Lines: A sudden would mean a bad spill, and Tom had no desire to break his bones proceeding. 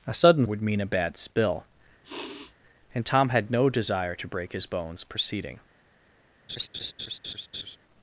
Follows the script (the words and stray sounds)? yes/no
no